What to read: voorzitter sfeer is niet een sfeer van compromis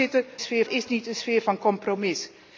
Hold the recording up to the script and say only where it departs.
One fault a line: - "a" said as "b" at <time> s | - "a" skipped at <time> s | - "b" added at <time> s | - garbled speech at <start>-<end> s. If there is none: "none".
none